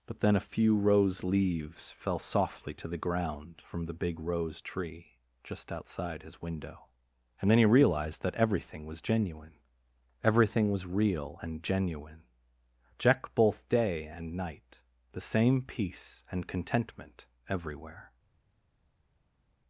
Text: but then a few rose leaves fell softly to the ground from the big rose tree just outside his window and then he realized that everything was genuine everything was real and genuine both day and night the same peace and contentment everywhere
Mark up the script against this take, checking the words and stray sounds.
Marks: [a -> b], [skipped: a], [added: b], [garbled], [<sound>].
but then a few rose leaves fell softly to the ground from the big rose tree just outside his window and then he realized that everything was genuine everything was real and genuine [added: jack] both day and night the same peace and contentment everywhere